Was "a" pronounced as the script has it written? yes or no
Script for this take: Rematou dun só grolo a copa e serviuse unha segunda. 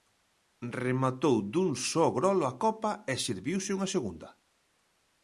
yes